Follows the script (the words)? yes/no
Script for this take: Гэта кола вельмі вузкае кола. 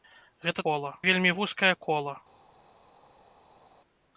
yes